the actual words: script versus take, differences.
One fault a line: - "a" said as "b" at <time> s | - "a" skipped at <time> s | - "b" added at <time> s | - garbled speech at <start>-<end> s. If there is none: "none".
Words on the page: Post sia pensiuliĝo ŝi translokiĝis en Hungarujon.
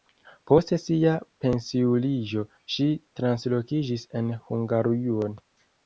none